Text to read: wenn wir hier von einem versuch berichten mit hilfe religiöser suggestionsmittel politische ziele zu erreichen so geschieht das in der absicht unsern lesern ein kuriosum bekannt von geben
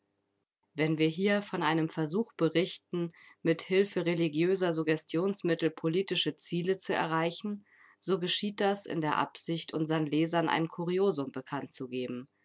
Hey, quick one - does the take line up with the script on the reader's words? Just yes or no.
no